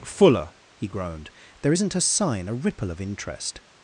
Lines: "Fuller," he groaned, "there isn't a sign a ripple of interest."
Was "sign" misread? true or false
false